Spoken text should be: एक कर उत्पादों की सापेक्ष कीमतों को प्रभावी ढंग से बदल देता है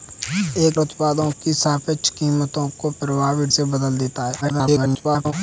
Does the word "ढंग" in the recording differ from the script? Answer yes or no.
yes